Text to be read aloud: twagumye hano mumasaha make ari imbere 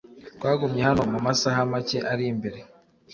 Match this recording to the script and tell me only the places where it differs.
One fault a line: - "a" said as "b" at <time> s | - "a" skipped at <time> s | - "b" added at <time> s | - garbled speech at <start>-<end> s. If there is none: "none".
none